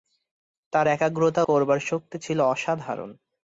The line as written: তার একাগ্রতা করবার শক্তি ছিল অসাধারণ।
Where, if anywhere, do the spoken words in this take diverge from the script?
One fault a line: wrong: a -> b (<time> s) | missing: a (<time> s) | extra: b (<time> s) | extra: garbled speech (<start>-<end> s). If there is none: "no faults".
no faults